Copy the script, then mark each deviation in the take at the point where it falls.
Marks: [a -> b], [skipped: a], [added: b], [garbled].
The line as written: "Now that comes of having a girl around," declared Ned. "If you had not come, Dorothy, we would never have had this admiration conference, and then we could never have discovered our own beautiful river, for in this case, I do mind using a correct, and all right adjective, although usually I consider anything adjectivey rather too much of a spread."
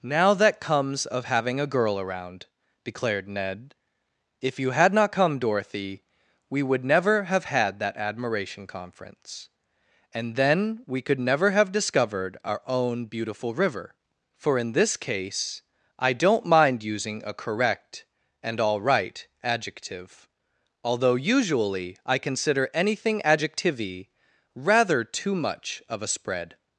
"Now that comes of having a girl around," declared Ned. "If you had not come, Dorothy, we would never have had [this -> that] admiration conference, and then we could never have discovered our own beautiful river, for in this case, I [do -> don't] mind using a correct, and all right adjective, although usually I consider anything adjectivey rather too much of a spread."